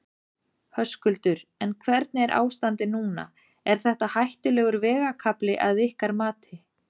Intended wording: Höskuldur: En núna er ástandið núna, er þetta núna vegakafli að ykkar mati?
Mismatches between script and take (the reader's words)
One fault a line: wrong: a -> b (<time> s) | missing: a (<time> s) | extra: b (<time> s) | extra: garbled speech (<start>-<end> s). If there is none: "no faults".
wrong: núna -> hvernig (1.9 s)
wrong: núna -> hættulegur (4.2 s)